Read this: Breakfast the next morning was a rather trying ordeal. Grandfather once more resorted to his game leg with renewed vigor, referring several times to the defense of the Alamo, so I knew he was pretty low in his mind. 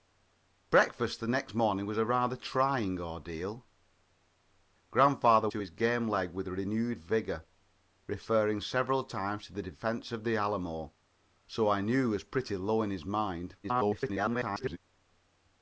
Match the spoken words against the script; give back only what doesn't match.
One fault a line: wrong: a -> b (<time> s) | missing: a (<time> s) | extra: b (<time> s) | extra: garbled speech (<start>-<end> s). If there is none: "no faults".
missing: once more resorted (5.5 s)
extra: garbled speech (13.6-14.8 s)